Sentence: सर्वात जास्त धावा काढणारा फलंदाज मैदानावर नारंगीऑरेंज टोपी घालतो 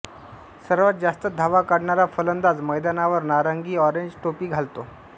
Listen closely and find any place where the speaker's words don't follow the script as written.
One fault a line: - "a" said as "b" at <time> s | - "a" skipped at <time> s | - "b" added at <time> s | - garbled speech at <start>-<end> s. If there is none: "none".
none